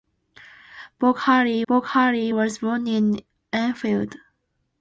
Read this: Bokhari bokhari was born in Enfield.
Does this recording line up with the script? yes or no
yes